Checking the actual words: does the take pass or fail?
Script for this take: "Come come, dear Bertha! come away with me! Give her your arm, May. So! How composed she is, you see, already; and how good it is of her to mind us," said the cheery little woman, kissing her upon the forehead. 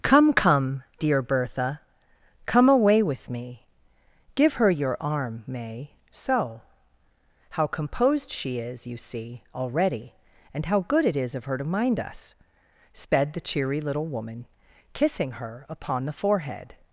fail